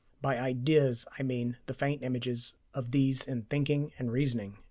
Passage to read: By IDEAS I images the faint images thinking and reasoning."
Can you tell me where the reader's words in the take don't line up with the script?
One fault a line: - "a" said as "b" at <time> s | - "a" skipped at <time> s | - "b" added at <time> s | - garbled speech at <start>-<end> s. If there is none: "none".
- "images" said as "mean" at 1.2 s
- "of these in" added at 2.7 s